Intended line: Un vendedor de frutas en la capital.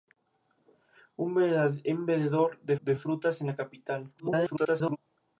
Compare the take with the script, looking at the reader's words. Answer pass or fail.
fail